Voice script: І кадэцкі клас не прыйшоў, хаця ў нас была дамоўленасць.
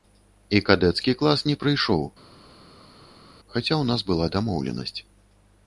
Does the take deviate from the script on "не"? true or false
false